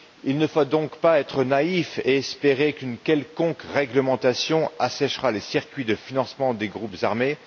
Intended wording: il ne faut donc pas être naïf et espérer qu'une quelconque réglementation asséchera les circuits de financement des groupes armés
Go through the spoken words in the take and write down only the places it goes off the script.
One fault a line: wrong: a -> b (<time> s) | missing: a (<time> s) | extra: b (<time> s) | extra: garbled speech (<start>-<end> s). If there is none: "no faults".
no faults